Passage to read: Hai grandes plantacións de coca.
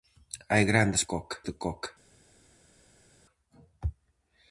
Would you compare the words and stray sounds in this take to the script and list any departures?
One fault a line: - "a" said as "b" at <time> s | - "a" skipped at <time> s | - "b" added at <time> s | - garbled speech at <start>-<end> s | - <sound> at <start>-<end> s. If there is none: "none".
- "plantacións" said as "coca" at 1.1 s